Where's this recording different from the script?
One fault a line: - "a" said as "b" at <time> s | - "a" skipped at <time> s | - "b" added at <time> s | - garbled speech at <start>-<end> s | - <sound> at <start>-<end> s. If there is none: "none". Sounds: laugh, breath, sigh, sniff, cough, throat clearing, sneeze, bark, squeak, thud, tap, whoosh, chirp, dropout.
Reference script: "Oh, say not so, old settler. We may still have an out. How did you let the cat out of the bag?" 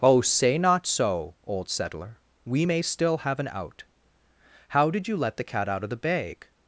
none